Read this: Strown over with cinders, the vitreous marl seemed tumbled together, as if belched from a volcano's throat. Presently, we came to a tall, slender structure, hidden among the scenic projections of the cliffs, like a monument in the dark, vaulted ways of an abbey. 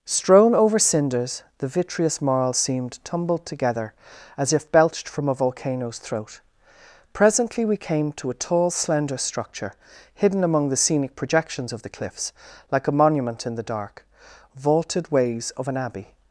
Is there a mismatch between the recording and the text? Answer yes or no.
yes